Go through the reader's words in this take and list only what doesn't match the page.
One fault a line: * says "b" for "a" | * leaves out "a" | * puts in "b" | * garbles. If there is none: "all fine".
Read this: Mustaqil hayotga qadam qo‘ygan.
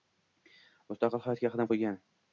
all fine